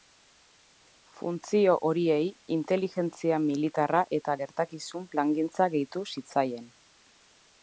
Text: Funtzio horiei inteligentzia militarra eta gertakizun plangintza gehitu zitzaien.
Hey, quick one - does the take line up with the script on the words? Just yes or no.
yes